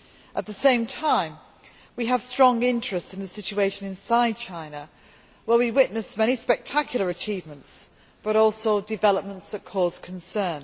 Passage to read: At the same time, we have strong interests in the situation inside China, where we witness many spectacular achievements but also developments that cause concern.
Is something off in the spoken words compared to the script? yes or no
no